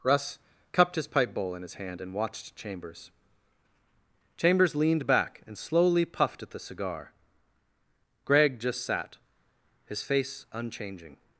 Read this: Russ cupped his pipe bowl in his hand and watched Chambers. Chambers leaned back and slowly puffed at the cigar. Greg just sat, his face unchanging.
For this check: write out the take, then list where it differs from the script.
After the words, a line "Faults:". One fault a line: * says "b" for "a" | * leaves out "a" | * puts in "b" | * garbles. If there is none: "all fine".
Russ cupped his pipe bowl in his hand and watched Chambers. Chambers leaned back and slowly puffed at the cigar. Greg just sat, his face unchanging.
Faults:
all fine